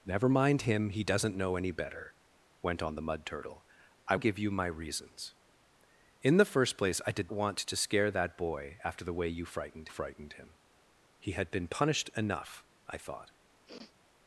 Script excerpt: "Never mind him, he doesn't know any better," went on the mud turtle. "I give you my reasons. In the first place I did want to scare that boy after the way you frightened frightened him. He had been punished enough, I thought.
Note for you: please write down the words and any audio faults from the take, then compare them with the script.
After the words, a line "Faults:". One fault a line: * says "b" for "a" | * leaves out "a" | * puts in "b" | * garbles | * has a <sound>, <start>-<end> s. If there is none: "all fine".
"Never mind him, he doesn't know any better," went on the mud turtle. "I give you my reasons. In the first place I did want to scare that boy after the way you frightened frightened him. He had been punished enough, I thought.
Faults:
* has a sniff, 13.7-13.9 s